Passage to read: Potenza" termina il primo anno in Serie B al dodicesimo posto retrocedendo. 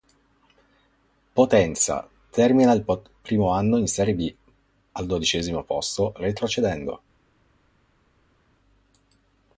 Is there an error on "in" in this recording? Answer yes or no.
no